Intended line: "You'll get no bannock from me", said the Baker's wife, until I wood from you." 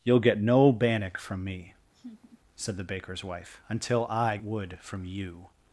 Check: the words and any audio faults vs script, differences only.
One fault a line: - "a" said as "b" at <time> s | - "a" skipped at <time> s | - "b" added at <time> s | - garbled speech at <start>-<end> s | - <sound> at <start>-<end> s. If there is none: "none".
- laugh at 1.9-2.4 s